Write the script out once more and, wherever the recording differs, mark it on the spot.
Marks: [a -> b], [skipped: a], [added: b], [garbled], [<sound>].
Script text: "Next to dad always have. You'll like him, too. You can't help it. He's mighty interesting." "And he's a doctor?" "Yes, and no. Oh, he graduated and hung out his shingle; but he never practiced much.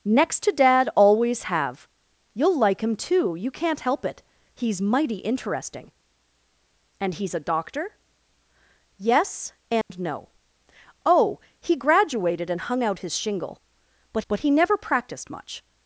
"Next to dad always have. You'll like him, too. You can't help it. He's mighty interesting." "And he's a doctor?" "Yes, and [dropout] no. Oh, he graduated and hung out his shingle; but [added: but] he never practiced much.